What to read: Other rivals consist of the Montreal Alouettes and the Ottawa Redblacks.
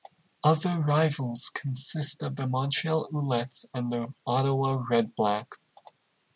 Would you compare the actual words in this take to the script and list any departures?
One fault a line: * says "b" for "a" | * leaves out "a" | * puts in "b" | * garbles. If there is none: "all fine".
all fine